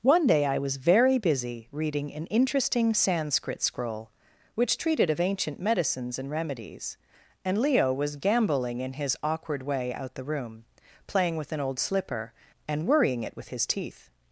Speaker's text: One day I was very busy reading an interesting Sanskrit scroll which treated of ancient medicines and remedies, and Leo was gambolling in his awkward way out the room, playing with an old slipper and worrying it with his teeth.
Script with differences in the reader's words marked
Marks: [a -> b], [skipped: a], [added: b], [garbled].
One day I was very busy reading an interesting Sanskrit scroll which treated of ancient medicines and remedies, and Leo was gambolling in his awkward way out the room, playing with an old slipper and worrying it with his teeth.